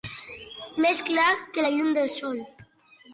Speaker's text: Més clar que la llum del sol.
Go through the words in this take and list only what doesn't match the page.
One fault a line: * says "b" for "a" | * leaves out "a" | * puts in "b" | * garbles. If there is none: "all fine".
all fine